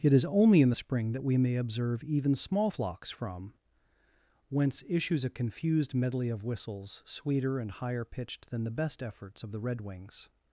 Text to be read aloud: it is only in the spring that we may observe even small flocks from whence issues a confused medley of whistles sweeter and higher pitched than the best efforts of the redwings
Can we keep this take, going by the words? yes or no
yes